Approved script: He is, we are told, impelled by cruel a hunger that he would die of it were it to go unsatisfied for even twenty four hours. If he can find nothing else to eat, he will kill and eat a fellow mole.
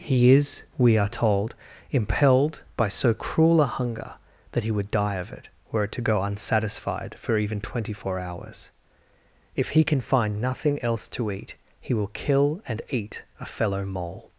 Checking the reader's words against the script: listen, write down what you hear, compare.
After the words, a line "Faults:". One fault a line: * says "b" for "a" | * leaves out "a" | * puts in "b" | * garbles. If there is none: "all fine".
He is, we are told, impelled by so cruel a hunger that he would die of it were it to go unsatisfied for even twenty four hours. If he can find nothing else to eat, he will kill and eat a fellow mole.
Faults:
* puts in "so"